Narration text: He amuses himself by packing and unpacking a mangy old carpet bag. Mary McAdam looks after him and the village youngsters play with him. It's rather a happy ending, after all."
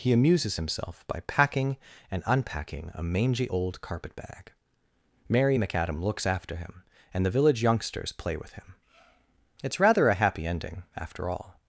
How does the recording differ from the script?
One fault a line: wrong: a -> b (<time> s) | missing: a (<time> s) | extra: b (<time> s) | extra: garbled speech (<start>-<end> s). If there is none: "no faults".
no faults